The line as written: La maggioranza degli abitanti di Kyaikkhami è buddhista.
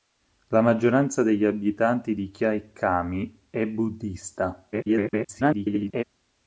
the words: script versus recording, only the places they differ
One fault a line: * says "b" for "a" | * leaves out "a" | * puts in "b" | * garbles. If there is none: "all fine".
* garbles